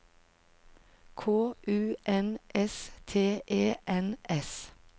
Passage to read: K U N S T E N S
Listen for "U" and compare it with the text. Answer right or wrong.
right